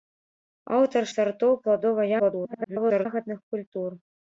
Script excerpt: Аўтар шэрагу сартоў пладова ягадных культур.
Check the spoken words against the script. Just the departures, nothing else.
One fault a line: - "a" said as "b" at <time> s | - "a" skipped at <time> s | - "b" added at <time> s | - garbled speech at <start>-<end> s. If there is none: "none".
- "шэрагу" skipped at 1.0 s
- garbled speech at 2.2-3.1 s